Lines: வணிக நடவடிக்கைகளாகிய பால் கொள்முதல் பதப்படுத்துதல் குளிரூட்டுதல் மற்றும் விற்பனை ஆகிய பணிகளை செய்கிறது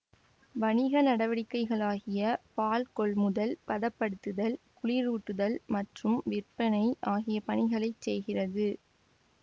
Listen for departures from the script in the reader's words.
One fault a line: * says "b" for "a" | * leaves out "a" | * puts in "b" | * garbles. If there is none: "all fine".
all fine